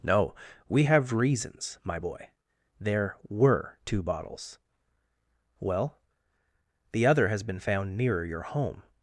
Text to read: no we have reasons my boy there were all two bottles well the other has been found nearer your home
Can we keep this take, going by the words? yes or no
no